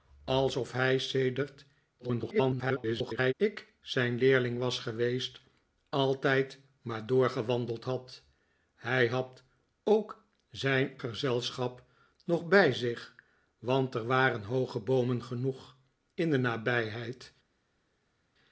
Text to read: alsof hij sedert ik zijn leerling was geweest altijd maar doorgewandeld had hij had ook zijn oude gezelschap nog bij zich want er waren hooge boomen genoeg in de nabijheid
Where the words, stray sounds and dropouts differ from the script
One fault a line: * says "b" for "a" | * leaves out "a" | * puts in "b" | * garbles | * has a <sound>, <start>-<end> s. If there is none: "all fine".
* garbles
* leaves out "oude"